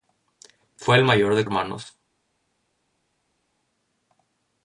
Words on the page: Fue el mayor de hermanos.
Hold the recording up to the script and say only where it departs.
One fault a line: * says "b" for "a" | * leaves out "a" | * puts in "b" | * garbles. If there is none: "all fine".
all fine